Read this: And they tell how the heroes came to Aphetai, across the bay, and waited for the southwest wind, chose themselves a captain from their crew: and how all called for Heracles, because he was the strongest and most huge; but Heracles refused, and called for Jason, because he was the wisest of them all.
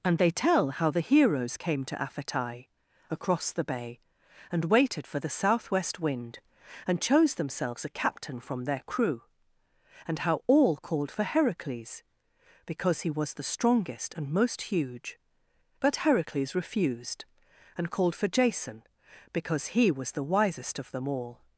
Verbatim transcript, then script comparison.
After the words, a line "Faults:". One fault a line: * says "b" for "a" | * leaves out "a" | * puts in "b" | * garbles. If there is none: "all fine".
And they tell how the heroes came to Aphetai, across the bay, and waited for the southwest wind, and chose themselves a captain from their crew: and how all called for Heracles, because he was the strongest and most huge; but Heracles refused, and called for Jason, because he was the wisest of them all.
Faults:
* puts in "and"